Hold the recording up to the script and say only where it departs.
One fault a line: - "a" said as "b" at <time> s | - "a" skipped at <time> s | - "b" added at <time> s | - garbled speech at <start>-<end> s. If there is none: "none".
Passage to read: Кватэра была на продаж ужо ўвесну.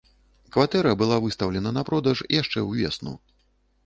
- "выстаўлена" added at 1.2 s
- "ужо" said as "яшчэ" at 2.4 s